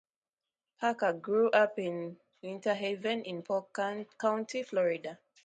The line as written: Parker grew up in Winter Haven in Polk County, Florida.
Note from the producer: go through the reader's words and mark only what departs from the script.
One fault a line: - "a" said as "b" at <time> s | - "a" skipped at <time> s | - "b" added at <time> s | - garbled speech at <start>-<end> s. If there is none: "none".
none